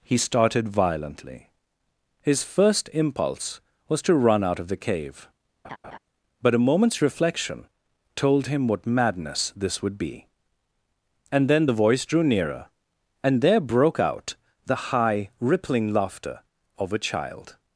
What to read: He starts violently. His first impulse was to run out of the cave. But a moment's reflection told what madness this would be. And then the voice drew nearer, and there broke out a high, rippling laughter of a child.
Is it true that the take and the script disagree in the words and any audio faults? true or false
true